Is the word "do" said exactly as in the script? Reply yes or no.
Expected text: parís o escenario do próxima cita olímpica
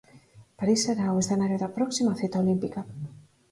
no